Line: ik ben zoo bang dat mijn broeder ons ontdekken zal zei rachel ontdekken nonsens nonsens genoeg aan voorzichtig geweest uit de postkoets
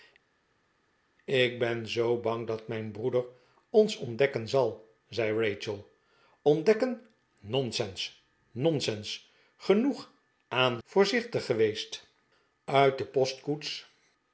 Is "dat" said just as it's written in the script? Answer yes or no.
yes